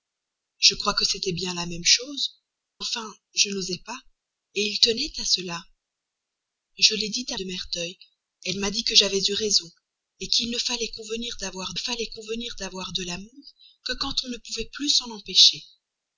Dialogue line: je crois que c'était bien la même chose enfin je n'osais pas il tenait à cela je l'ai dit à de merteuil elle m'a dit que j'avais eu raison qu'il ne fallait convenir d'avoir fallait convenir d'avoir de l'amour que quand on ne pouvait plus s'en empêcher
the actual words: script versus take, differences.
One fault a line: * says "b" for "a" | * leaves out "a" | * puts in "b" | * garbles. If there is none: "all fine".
all fine